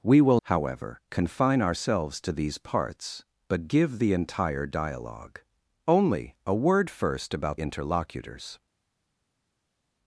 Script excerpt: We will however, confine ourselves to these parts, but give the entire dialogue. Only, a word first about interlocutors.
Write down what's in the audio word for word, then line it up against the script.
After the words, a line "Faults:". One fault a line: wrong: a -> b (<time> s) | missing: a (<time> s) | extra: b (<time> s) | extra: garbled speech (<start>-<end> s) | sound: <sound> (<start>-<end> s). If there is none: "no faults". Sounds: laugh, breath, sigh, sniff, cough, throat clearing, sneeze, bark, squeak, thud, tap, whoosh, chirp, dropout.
We will however, confine ourselves to these parts, but give the entire dialogue. Only, a word first about interlocutors.
Faults:
no faults